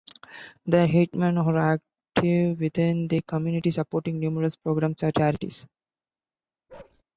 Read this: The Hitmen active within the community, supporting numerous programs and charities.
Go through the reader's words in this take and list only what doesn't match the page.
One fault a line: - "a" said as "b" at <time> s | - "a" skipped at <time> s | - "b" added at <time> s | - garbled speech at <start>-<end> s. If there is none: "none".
- "are" added at 1.4 s